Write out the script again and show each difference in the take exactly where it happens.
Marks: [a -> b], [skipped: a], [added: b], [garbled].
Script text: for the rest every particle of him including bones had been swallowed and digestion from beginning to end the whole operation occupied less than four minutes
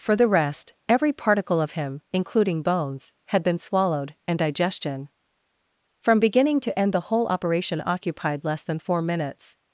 for the rest every particle of him including bones had been swallowed and digestion from beginning to end the whole operation occupied less than four minutes